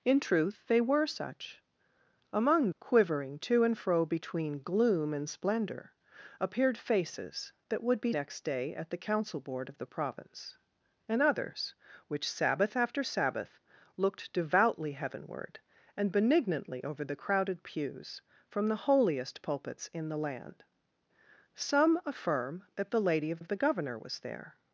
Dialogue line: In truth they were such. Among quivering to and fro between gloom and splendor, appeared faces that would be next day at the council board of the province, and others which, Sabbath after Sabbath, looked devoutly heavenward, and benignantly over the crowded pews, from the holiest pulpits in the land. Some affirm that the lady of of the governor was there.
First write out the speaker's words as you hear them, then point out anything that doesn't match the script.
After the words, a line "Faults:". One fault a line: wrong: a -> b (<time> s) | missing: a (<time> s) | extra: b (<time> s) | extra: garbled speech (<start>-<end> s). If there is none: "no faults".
In truth they were such. Among quivering to and fro between gloom and splendor, appeared faces that would be next day at the council board of the province, and others which, Sabbath after Sabbath, looked devoutly heavenward, and benignantly over the crowded pews, from the holiest pulpits in the land. Some affirm that the lady of of the governor was there.
Faults:
no faults